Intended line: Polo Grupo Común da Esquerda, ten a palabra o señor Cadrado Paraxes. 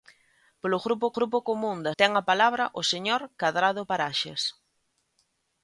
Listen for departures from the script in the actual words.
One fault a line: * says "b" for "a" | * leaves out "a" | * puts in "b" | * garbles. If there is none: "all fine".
* puts in "Grupo"
* leaves out "Esquerda"